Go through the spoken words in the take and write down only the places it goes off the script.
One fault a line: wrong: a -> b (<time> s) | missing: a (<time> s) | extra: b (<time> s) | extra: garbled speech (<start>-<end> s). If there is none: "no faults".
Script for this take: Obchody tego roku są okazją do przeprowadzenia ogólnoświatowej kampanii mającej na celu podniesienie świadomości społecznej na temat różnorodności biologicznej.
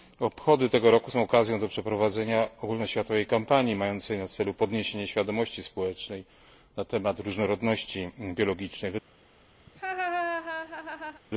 no faults